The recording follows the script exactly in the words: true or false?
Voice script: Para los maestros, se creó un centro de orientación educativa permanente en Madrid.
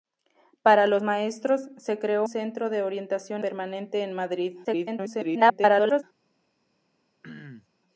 false